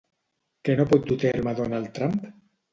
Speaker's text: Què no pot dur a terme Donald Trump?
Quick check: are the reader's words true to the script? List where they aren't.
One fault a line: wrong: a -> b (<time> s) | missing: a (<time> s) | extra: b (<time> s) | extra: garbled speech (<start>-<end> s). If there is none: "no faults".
no faults